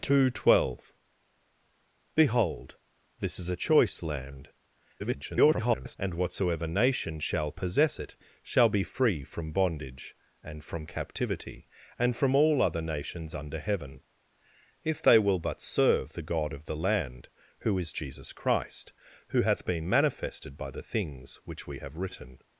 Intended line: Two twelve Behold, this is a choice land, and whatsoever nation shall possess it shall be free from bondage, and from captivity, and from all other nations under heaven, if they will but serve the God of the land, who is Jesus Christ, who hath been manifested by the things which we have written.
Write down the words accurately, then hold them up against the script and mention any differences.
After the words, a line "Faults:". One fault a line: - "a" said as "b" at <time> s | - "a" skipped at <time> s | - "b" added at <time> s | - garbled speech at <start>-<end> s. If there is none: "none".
Two twelve Behold, this is a choice land, [garbled] and whatsoever nation shall possess it shall be free from bondage, and from captivity, and from all other nations under heaven, if they will but serve the God of the land, who is Jesus Christ, who hath been manifested by the things which we have written.
Faults:
- garbled speech at 5.0-6.0 s